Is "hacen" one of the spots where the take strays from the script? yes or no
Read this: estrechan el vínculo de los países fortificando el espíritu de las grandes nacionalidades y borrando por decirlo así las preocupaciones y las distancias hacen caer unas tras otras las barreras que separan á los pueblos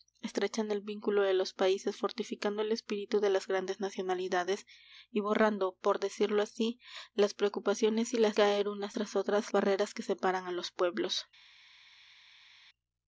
yes